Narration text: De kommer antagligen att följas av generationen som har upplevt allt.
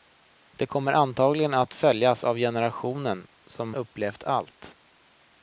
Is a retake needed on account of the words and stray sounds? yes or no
yes